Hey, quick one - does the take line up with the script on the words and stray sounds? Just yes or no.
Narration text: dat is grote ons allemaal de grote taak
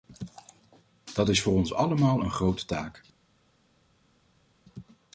no